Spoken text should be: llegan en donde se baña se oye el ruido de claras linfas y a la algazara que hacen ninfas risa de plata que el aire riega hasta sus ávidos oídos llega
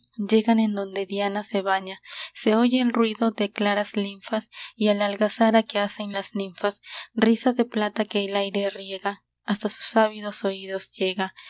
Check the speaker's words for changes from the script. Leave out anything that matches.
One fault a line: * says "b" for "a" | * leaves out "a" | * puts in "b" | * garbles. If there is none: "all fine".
* puts in "diana"
* puts in "las"